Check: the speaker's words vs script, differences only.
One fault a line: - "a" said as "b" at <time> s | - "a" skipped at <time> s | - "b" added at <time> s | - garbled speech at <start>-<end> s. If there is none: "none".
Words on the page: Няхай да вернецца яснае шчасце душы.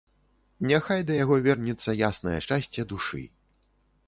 - "яго" added at 1.2 s